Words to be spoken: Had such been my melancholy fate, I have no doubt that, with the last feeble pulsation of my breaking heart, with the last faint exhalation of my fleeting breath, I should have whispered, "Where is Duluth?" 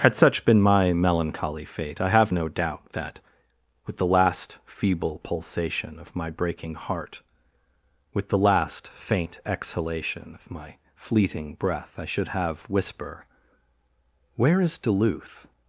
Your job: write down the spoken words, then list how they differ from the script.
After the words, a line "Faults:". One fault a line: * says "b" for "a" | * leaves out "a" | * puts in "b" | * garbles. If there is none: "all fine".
Had such been my melancholy fate, I have no doubt that, with the last feeble pulsation of my breaking heart, with the last faint exhalation of my fleeting breath, I should have whisper, "Where is Duluth?"
Faults:
* says "whisper" for "whispered"